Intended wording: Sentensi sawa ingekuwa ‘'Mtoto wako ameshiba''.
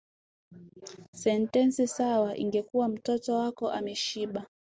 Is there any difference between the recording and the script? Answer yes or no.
no